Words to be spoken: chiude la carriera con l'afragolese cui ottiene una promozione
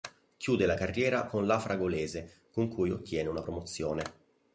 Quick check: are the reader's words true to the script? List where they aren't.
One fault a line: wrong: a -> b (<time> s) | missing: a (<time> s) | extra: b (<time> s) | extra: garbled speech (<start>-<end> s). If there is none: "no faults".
extra: con (2.5 s)